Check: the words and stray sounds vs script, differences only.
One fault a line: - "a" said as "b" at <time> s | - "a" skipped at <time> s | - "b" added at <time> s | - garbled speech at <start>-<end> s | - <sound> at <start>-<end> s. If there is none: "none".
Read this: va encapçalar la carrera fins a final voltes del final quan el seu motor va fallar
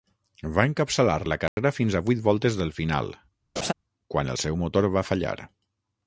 - dropout at 1.5-1.6 s
- "final" said as "vuit" at 2.1 s
- laugh at 3.6-3.7 s